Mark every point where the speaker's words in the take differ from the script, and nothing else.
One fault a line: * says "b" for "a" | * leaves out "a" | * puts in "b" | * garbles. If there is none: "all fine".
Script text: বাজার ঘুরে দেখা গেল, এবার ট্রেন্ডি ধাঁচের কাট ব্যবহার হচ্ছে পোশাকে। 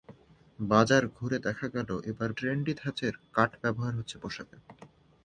all fine